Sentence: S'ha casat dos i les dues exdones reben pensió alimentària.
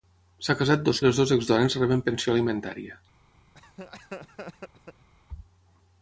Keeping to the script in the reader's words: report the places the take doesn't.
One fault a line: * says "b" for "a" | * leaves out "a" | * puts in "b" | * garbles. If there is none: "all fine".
all fine